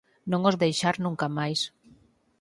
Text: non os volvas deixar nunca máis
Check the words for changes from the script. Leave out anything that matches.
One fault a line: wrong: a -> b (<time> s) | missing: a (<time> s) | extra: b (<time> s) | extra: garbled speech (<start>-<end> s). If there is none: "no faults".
missing: volvas (0.6 s)